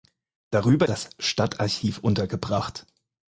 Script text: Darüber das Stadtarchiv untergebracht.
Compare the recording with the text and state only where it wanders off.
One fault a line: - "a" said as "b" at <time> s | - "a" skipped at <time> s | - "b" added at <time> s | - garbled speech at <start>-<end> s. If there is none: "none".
none